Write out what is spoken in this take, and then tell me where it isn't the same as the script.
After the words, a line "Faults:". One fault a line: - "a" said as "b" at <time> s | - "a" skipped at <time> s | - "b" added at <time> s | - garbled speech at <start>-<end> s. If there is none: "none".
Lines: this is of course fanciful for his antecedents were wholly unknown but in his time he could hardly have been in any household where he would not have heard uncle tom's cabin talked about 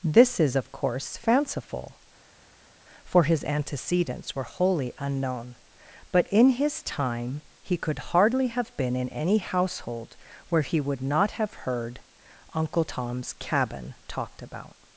this is of course fanciful for his antecedents were wholly unknown but in his time he could hardly have been in any household where he would not have heard uncle tom's cabin talked about
Faults:
none